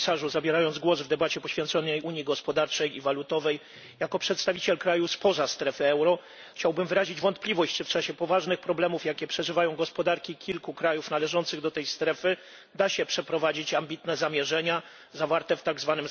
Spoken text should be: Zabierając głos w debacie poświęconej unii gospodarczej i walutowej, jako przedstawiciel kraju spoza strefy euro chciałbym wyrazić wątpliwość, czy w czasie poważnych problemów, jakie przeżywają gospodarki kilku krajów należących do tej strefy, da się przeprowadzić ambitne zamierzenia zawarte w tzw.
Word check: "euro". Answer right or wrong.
right